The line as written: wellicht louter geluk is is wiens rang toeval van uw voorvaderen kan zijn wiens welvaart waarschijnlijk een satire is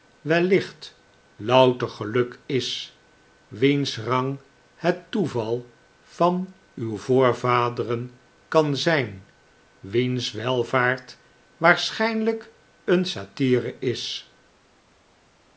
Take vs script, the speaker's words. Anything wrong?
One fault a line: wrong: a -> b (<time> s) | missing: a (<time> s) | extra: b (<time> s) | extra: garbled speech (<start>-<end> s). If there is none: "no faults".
missing: is (3.0 s)
extra: het (4.8 s)